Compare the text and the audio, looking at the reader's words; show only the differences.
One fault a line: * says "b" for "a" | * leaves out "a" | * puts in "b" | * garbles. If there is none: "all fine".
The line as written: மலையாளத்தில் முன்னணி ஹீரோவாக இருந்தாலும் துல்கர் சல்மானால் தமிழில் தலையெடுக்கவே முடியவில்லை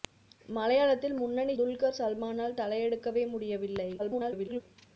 * leaves out "ஹீரோவாக இருந்தாலும்"
* leaves out "தமிழில்"
* garbles